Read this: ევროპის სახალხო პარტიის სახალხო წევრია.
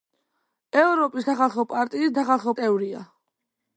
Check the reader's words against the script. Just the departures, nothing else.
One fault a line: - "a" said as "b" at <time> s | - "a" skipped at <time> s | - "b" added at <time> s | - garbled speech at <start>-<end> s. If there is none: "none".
none